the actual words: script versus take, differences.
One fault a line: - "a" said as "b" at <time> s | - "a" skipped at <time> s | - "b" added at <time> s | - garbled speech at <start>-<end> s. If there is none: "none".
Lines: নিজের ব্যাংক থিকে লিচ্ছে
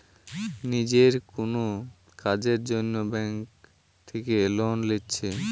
- "কুনো কাজের জন্যে" added at 1.3 s
- "লোন" added at 4.6 s